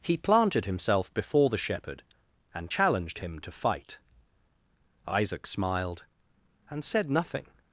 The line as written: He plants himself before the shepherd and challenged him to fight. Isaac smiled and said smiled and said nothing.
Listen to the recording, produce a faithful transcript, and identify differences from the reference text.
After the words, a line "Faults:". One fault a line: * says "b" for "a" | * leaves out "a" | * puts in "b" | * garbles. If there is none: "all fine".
He planted himself before the shepherd and challenged him to fight. Isaac smiled and said nothing.
Faults:
* says "planted" for "plants"
* leaves out "smiled and said"